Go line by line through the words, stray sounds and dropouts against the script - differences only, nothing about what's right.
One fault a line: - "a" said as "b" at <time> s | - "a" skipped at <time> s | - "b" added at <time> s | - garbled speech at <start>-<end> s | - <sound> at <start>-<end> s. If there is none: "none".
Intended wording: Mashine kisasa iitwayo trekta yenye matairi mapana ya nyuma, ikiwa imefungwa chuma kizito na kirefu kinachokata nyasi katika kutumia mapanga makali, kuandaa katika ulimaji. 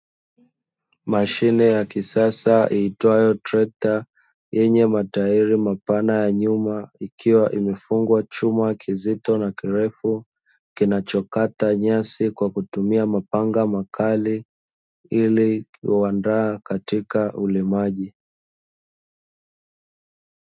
- "ya" added at 1.8 s
- "katika" said as "kwa" at 12.3 s
- "ili" added at 15.1 s